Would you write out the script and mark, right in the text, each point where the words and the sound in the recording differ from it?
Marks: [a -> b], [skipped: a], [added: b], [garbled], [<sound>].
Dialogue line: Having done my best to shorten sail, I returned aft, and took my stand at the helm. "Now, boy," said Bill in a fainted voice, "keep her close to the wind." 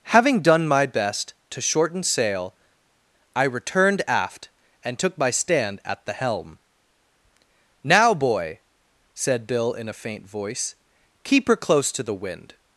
Having done my best to shorten sail, I returned aft, and took my stand at the helm. "Now, boy," said Bill in a [fainted -> faint] voice, "keep her close to the wind."